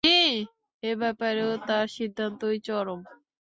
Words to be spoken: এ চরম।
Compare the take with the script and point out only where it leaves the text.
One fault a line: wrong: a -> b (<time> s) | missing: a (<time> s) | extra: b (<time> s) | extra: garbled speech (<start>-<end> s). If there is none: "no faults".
extra: ব্যাপারেও তার সিদ্ধান্তই (0.9 s)